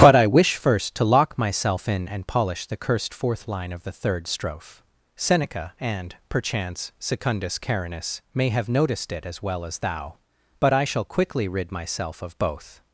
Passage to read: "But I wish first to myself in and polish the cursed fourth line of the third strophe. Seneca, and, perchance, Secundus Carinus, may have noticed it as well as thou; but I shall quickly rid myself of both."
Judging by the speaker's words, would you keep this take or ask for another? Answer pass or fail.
fail